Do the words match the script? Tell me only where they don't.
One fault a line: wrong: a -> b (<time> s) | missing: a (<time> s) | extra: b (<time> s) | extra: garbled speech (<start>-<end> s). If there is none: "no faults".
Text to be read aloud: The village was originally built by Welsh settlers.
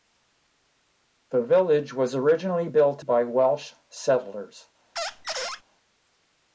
no faults